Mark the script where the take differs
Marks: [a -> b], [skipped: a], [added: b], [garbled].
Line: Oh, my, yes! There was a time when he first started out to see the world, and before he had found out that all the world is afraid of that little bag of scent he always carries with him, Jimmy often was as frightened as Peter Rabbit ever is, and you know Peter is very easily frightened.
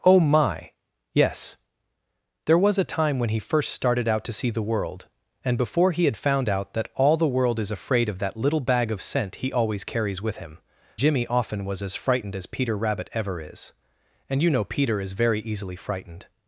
Oh, my, yes! There was a time when he first started out to see the world, and before he had found out that all the world is afraid of that little bag of scent he always carries with him, Jimmy often was as frightened as Peter Rabbit ever is, and you know Peter is very easily frightened.